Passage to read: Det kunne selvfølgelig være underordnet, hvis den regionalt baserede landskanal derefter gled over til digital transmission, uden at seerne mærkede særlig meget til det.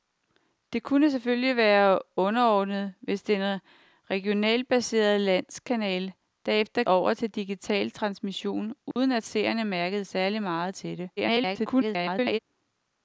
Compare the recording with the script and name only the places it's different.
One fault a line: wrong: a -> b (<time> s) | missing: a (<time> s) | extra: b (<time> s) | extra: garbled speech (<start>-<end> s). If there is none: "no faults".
missing: gled (6.8 s)
extra: garbled speech (11.2-12.4 s)